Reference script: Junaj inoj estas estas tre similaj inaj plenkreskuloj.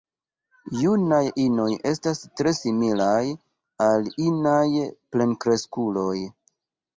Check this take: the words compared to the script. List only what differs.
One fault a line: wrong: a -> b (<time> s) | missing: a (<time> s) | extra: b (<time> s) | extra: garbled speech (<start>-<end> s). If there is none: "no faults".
missing: estas (2.2 s)
extra: al (3.9 s)